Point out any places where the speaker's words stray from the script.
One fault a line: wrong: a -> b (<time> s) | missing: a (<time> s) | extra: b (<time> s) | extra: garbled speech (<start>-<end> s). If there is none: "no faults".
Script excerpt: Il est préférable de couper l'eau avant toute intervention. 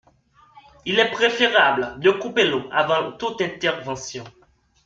no faults